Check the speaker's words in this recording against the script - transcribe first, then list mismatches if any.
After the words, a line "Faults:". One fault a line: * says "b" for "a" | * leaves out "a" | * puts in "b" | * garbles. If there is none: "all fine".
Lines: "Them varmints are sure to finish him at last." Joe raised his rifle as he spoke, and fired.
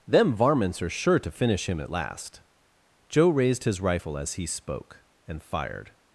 "Them varmints are sure to finish him at last." Joe raised his rifle as he spoke, and fired.
Faults:
all fine